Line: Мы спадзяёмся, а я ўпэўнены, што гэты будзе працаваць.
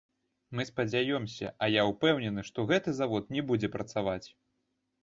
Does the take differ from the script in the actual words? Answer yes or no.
yes